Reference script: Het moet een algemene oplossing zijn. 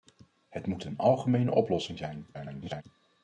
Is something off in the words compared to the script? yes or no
yes